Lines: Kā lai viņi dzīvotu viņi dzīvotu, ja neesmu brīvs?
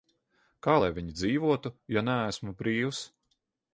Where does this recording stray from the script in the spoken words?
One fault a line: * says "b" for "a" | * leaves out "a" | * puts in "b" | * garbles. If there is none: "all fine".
* leaves out "viņi dzīvotu"